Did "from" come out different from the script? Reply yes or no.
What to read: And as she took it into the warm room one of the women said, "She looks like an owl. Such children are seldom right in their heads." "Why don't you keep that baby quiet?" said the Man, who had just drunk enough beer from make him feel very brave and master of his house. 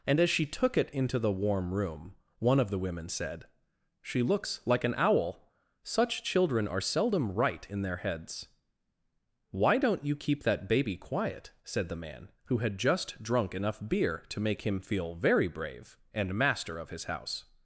yes